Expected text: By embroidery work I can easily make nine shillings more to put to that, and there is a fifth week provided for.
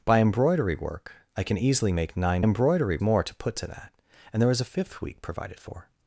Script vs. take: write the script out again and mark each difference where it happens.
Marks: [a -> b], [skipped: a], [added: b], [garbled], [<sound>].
By embroidery work I can easily make nine [shillings -> embroidery] more to put to that, and there is a fifth week provided for.